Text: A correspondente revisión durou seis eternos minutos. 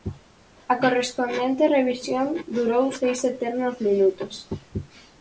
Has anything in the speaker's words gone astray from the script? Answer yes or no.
no